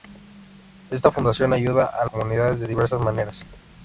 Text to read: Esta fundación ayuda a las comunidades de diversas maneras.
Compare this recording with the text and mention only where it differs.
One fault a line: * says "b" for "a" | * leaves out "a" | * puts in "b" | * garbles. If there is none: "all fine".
* leaves out "las"